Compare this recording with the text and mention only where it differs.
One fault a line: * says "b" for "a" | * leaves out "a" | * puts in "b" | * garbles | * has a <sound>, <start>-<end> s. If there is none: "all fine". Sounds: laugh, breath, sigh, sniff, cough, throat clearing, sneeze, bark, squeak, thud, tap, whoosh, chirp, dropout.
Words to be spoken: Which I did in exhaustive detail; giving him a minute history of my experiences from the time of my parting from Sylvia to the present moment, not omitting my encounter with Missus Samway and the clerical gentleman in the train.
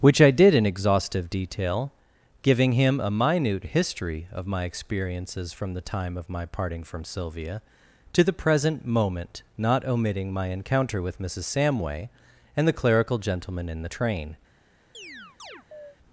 * has a chirp, 14.9-16.0 s